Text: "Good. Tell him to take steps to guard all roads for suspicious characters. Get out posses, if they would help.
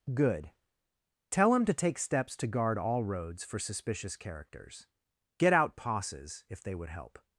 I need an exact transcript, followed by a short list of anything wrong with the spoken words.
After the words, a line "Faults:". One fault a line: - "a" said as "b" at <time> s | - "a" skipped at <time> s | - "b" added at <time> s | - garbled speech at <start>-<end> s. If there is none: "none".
"Good. Tell him to take steps to guard all roads for suspicious characters. Get out posses, if they would help.
Faults:
none